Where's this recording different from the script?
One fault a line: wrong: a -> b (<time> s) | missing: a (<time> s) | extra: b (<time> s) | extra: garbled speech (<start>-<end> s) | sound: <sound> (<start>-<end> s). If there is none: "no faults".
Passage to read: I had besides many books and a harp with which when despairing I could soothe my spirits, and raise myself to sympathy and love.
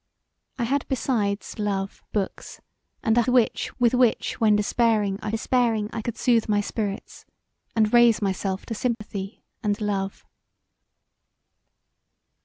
wrong: many -> love (1.6 s)
wrong: harp -> which (3.3 s)
extra: despairing I (5.3 s)
sound: dropout (8.9-9.0 s)